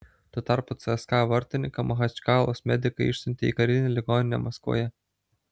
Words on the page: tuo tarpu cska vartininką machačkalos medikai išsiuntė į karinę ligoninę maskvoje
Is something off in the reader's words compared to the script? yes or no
no